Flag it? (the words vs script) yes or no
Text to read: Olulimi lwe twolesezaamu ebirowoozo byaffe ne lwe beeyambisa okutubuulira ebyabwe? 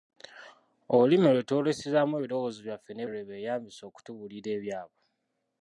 no